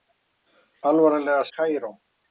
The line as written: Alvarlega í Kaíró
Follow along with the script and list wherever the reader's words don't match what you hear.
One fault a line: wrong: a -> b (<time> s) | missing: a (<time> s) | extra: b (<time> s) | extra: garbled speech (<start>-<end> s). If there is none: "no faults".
no faults